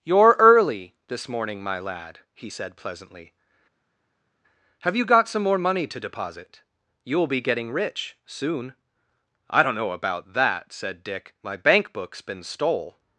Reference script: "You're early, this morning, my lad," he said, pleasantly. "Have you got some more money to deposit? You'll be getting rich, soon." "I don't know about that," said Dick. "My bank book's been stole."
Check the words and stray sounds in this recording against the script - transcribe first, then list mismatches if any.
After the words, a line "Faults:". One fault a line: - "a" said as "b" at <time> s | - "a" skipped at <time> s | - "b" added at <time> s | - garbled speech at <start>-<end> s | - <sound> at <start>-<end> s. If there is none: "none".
"You're early, this morning, my lad," he said, pleasantly. "Have you got some more money to deposit? You'll be getting rich, soon." "I don't know about that," said Dick. "My bank book's been stole."
Faults:
none